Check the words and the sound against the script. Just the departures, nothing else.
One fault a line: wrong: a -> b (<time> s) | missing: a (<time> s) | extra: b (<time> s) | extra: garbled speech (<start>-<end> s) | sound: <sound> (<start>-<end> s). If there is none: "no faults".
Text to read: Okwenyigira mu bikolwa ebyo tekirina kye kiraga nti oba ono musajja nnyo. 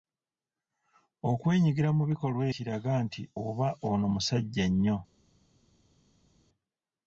missing: ebyo tekirina kye (2.4 s)